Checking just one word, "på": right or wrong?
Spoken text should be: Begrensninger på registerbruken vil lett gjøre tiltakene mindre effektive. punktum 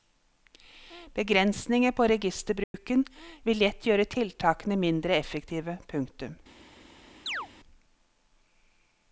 right